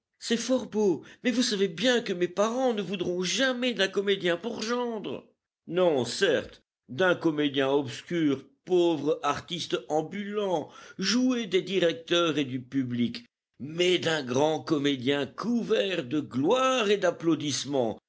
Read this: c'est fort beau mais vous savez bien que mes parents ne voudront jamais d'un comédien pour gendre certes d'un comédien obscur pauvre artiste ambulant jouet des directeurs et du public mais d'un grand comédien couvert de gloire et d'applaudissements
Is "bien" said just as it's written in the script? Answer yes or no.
yes